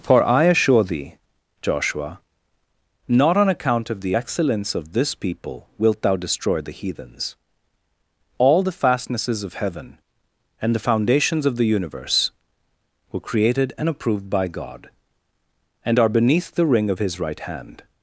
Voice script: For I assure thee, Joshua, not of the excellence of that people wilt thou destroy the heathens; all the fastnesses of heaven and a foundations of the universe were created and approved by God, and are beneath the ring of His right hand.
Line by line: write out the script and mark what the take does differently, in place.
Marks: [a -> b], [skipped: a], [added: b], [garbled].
For I assure thee, Joshua, not [added: on account] of the excellence of [that -> this] people wilt thou destroy the heathens; all the fastnesses of heaven and [a -> the] foundations of the universe were created and approved by God, and are beneath the ring of His right hand.